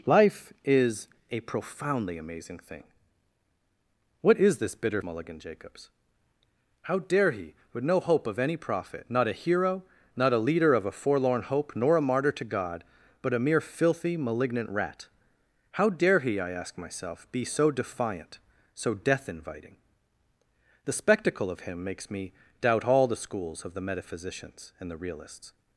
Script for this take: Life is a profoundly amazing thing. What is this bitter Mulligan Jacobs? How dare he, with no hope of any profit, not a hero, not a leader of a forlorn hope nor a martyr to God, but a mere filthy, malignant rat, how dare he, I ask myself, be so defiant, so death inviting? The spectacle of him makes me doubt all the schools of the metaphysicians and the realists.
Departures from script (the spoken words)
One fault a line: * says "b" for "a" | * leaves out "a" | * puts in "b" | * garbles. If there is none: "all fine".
all fine